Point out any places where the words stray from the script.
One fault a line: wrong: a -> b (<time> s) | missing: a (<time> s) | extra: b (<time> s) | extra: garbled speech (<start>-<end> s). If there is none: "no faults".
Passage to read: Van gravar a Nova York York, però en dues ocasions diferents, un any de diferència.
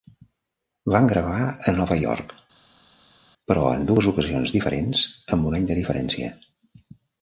missing: York (2.3 s)
extra: amb (5.4 s)